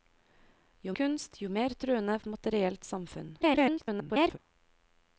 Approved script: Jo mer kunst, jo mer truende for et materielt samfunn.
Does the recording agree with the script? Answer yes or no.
no